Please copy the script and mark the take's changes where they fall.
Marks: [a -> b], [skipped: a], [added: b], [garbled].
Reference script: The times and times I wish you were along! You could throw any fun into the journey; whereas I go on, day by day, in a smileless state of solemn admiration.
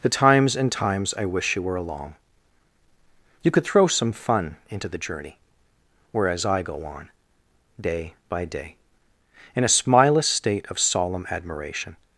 The times and times I wish you were along! You could throw [any -> some] fun into the journey; whereas I go on, day by day, in a smileless state of solemn admiration.